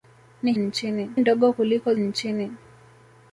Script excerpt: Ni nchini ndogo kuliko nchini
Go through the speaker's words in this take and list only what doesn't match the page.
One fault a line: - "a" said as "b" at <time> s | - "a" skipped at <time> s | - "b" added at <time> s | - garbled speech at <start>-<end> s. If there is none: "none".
none